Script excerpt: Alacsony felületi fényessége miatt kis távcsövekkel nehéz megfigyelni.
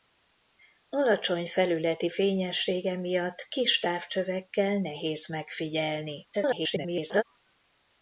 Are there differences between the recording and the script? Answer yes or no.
yes